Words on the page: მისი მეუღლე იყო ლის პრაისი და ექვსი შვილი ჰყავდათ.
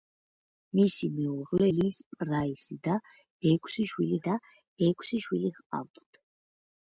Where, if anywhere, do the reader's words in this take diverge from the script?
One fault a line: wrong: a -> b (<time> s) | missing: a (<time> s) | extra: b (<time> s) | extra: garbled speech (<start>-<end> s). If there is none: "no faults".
missing: იყო (1.7 s)
extra: და ექვსი შვილი (4.3 s)